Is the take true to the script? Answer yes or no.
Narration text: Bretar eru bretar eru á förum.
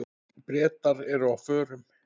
no